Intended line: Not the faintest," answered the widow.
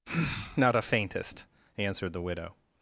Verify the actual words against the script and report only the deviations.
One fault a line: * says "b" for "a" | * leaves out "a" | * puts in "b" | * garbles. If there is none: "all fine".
* says "a" for "the"